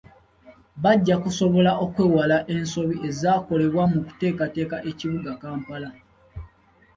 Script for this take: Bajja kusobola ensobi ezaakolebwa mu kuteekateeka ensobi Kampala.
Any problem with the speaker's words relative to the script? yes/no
yes